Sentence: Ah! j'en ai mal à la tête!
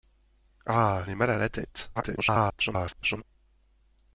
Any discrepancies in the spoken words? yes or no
yes